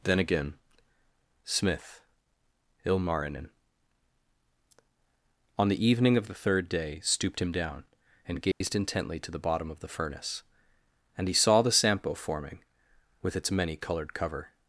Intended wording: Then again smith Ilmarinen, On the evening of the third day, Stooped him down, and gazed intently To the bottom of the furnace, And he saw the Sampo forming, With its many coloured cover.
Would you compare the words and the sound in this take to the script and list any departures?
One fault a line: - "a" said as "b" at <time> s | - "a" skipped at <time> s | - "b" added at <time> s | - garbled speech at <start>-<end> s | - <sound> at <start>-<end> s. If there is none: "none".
- dropout at 8.5-8.6 s